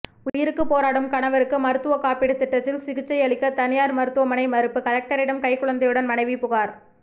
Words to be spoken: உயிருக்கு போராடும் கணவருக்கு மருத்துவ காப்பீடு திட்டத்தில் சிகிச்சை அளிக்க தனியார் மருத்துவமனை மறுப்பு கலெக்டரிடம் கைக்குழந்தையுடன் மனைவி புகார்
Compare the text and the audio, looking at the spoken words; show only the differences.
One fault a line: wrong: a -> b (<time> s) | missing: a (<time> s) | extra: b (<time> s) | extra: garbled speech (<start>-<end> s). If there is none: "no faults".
no faults